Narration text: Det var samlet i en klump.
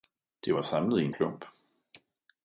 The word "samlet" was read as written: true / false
true